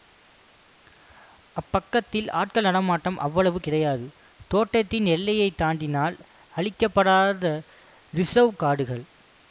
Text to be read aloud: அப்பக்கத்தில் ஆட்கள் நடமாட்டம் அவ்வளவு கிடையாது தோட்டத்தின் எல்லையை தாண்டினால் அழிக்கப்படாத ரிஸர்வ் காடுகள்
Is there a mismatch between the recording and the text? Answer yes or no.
no